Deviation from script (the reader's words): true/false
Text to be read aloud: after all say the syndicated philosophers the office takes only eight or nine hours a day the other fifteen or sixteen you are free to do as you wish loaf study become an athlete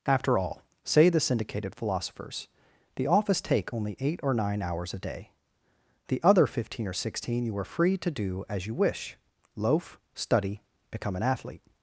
true